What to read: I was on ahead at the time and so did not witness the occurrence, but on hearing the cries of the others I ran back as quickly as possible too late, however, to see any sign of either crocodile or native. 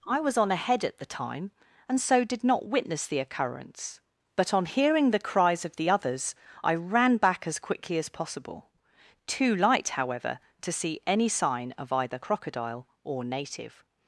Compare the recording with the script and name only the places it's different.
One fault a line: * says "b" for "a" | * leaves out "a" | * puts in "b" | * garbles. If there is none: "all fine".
* says "light" for "late"